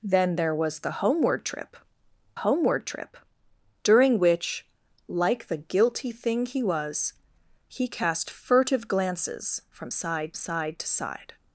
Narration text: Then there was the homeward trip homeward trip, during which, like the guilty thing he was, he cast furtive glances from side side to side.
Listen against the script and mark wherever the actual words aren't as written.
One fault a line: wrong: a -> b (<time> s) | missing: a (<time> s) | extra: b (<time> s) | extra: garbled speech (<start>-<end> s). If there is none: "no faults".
no faults